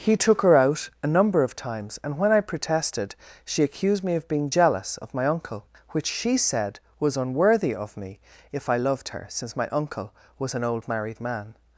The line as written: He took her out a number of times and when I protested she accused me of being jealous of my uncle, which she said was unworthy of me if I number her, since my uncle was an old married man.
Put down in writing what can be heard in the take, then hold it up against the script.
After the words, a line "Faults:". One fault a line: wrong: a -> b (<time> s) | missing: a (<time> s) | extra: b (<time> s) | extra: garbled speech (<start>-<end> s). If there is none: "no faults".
He took her out a number of times and when I protested she accused me of being jealous of my uncle, which she said was unworthy of me if I loved her, since my uncle was an old married man.
Faults:
wrong: number -> loved (8.8 s)